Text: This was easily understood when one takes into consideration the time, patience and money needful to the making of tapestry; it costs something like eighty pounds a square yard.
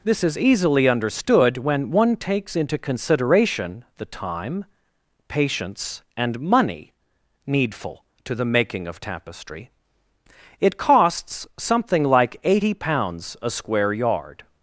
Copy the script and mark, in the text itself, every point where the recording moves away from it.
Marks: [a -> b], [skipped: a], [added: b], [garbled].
This [was -> is] easily understood when one takes into consideration the time, patience and money needful to the making of tapestry; it costs something like eighty pounds a square yard.